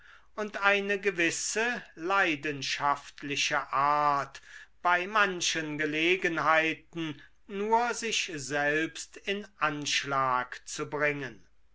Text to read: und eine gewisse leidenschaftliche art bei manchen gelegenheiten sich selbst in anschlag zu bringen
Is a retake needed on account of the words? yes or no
yes